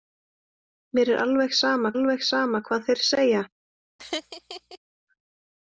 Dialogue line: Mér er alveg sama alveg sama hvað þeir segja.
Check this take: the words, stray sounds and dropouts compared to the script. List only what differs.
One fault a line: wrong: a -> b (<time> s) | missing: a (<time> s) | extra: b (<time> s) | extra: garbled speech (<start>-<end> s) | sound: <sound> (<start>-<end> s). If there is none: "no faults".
sound: laugh (4.0-4.8 s)